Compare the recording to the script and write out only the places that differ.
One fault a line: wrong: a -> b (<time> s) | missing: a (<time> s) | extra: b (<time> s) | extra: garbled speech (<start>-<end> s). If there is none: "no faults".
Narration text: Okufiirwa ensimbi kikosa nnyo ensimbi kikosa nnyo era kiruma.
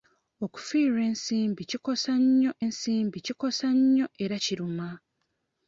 no faults